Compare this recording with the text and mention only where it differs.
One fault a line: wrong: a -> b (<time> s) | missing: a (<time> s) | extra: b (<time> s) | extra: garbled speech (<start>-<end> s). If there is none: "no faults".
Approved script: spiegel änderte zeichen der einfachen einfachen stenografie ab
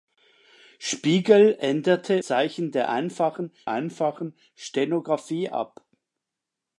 no faults